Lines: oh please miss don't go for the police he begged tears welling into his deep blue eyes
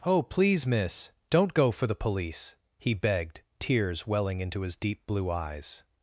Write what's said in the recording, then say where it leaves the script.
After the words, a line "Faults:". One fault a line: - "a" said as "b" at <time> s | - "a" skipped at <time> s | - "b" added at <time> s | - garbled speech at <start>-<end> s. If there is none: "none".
oh please miss don't go for the police he begged tears welling into his deep blue eyes
Faults:
none